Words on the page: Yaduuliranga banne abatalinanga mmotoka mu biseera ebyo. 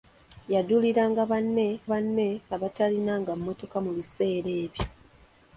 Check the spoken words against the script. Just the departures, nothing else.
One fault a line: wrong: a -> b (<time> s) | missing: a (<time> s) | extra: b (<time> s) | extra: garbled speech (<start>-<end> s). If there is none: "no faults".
extra: banne (1.9 s)